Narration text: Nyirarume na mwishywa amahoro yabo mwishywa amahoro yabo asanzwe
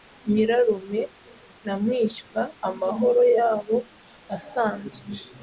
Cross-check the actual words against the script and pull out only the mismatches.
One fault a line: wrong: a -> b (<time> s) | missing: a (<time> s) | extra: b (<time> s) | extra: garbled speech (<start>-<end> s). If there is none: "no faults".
missing: mwishywa amahoro yabo (3.8 s)